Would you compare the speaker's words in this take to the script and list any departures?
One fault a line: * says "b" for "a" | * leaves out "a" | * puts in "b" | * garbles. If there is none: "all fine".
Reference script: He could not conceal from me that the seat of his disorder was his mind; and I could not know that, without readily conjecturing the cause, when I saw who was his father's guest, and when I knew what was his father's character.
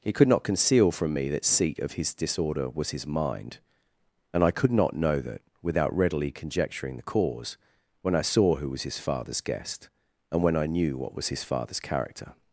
* leaves out "the"